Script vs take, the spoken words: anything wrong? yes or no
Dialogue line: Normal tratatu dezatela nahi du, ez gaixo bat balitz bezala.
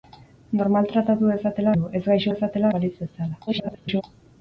yes